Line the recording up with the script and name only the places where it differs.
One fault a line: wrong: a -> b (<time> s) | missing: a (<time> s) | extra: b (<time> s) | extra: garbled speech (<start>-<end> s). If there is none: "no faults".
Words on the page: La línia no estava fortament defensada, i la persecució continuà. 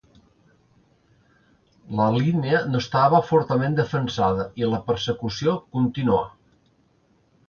no faults